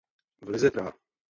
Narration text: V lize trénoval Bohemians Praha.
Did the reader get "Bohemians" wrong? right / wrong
wrong